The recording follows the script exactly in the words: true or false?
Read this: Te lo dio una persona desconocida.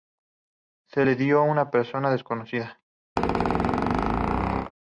false